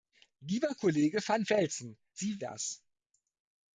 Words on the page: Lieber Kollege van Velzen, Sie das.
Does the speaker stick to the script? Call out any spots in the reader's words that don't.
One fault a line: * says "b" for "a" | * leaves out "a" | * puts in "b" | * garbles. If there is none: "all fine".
all fine